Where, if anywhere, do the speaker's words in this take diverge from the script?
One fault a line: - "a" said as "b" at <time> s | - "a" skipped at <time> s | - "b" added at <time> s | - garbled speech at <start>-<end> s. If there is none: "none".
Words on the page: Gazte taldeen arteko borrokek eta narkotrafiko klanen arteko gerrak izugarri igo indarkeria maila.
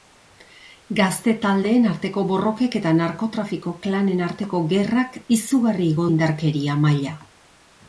none